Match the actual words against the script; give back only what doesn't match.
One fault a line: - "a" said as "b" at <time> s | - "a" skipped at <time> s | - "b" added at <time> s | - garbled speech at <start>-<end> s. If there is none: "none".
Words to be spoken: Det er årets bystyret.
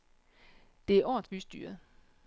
none